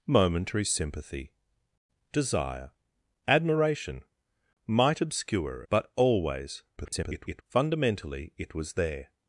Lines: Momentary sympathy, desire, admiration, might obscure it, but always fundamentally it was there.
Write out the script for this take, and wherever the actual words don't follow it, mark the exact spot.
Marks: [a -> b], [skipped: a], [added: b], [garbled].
Momentary sympathy, desire, admiration, might obscure [skipped: it,] but always [garbled] fundamentally it was there.